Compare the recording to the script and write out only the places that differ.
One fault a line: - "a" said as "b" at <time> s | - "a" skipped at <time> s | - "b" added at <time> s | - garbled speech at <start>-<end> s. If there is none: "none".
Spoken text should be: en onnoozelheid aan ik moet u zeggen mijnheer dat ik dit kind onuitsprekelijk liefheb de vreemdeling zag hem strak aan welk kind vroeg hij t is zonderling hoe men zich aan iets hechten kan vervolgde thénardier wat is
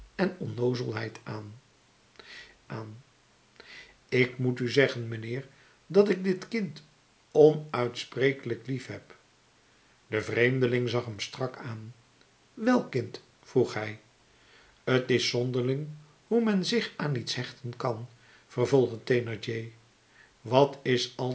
- "aan" added at 2.7 s